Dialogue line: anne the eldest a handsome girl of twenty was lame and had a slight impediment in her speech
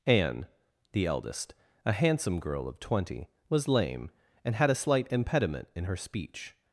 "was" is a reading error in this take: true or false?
false